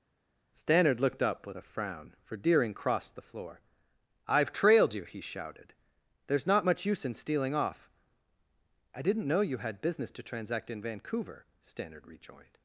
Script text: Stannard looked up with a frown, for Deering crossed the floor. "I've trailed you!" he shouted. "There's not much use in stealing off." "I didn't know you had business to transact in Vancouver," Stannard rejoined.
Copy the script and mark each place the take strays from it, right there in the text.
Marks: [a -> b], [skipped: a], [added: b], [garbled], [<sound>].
Stannard looked up with a frown, for Deering crossed the floor. "I've trailed you!" he shouted. "There's not much use in stealing off." "I didn't know you had business to transact in Vancouver," Stannard rejoined.